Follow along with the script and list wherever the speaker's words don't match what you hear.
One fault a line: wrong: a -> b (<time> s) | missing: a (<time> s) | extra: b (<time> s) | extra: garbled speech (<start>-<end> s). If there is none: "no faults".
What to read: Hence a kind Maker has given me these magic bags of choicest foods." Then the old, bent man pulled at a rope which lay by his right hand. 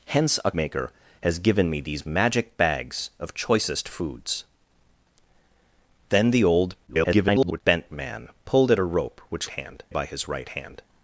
missing: kind (0.5 s)
extra: garbled speech (6.9-7.6 s)
wrong: lay -> hand (9.5 s)